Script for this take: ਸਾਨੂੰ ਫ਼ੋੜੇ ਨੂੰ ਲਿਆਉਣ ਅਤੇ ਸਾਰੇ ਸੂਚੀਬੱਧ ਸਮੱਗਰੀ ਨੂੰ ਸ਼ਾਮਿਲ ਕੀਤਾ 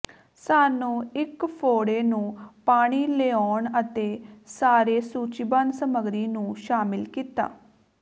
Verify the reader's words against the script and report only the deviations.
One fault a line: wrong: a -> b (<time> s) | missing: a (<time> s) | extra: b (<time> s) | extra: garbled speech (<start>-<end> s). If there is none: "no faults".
extra: ਇੱਕ (1.1 s)
extra: ਪਾਣੀ (2.7 s)